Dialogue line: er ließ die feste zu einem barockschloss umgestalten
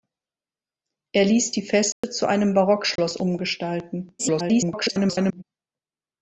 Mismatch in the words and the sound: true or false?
true